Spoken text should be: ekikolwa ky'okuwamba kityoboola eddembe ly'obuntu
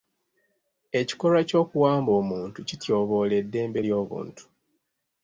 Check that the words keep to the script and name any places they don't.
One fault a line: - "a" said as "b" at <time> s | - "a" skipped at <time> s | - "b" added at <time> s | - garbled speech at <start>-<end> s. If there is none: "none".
- "omuntu" added at 2.2 s